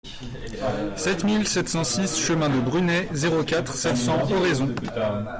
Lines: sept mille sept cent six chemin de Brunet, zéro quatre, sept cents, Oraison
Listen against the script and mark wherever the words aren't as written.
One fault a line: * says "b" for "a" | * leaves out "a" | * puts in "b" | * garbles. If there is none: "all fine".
all fine